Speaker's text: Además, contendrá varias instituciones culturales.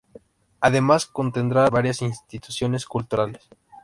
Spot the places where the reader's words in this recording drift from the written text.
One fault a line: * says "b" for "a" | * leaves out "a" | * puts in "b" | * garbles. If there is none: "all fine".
all fine